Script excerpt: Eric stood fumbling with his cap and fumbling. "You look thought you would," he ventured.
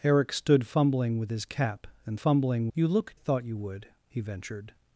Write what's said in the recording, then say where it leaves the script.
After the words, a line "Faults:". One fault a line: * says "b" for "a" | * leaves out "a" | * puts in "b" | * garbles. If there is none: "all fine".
Eric stood fumbling with his cap and fumbling. "You look thought you would," he ventured.
Faults:
all fine